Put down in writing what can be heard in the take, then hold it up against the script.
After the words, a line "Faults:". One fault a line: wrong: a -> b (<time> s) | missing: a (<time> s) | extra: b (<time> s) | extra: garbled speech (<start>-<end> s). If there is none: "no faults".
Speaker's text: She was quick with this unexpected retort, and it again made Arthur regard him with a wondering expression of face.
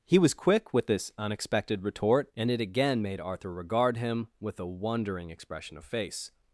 He was quick with this unexpected retort, and it again made Arthur regard him with a wondering expression of face.
Faults:
wrong: She -> He (0.1 s)